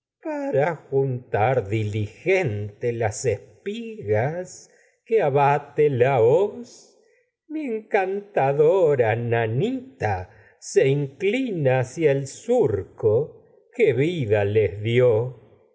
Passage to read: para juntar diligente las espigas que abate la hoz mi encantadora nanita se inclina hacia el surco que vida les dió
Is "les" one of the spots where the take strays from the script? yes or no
no